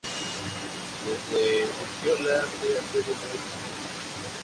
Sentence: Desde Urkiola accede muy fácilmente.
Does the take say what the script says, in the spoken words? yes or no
no